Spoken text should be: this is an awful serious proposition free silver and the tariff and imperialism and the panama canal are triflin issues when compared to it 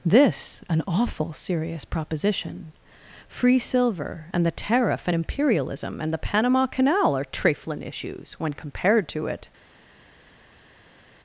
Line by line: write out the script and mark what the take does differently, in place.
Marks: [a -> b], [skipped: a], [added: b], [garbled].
this [skipped: is] an awful serious proposition free silver and the tariff and imperialism and the panama canal are triflin issues when compared to it